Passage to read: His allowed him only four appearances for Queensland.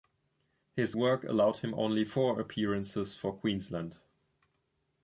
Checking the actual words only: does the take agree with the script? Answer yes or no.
no